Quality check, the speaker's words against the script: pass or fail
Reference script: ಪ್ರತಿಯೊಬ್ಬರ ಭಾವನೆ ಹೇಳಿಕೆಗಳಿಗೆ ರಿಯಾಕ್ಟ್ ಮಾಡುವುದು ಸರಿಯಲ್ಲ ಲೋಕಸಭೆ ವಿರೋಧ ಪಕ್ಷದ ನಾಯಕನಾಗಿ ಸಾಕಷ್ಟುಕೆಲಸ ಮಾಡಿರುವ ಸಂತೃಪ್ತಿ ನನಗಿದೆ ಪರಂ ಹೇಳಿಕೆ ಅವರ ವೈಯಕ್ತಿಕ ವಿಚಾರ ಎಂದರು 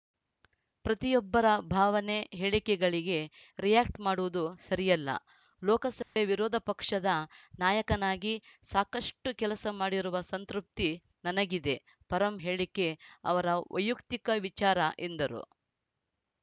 pass